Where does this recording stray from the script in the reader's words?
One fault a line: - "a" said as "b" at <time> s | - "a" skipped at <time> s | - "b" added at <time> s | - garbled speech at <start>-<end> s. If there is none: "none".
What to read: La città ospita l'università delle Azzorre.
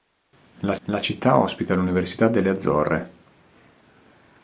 - "la" added at 0.9 s